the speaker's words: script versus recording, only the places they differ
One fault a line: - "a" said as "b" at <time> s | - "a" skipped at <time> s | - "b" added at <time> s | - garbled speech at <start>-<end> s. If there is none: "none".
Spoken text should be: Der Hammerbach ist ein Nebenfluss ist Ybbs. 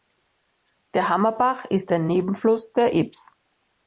- "ist" said as "der" at 2.7 s